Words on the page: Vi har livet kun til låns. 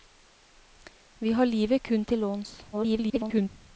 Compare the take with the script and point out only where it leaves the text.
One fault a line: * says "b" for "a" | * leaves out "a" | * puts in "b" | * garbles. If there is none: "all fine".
* garbles